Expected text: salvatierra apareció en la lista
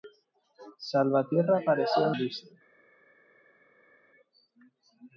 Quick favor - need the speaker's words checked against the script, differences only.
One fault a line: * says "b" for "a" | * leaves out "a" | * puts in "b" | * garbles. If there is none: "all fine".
* leaves out "la"